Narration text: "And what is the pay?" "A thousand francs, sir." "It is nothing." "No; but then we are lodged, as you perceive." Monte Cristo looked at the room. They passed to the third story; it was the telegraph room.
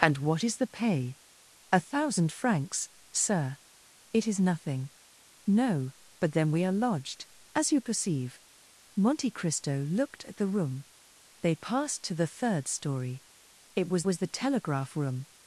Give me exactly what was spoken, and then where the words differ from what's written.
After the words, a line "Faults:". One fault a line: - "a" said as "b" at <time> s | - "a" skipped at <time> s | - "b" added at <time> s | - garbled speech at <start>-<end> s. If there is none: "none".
"And what is the pay?" "A thousand francs, sir." "It is nothing." "No; but then we are lodged, as you perceive." Monte Cristo looked at the room. They passed to the third story; it was was the telegraph room.
Faults:
- "was" added at 14.0 s